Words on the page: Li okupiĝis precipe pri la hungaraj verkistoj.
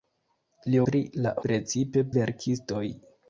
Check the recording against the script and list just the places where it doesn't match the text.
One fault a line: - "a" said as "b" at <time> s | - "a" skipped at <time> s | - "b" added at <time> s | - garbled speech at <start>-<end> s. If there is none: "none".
- "okupiĝis precipe" skipped at 0.8 s
- "hungaraj" said as "precipe" at 1.5 s